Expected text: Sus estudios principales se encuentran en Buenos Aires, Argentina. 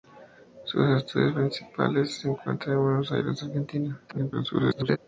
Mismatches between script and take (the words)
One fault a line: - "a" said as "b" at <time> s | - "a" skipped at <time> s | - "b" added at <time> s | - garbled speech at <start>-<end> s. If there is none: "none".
- garbled speech at 4.1-5.0 s